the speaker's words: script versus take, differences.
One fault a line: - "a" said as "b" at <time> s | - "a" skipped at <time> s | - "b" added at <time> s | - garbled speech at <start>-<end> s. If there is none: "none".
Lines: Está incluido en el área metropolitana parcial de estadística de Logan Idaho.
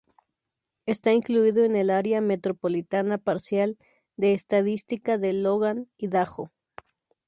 none